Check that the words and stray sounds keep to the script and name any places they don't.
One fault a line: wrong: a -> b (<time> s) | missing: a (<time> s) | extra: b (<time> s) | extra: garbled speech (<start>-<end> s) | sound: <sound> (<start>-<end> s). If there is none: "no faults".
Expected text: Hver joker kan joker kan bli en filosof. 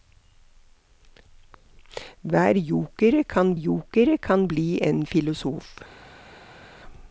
no faults